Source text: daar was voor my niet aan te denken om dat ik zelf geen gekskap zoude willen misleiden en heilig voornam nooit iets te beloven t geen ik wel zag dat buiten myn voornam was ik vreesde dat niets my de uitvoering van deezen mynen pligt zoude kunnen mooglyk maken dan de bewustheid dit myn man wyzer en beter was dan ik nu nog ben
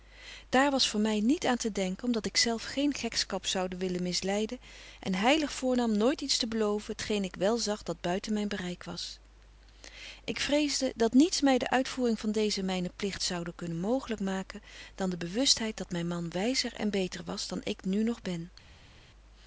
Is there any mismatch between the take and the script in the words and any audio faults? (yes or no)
yes